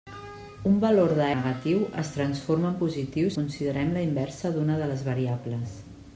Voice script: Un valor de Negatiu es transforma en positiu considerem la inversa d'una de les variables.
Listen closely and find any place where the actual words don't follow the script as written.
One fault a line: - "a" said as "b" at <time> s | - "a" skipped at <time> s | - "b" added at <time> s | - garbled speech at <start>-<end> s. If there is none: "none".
none